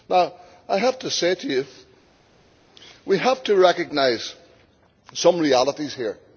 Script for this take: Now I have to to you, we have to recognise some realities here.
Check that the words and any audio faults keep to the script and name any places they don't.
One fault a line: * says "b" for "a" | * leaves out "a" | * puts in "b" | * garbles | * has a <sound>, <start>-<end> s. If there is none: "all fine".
* puts in "say"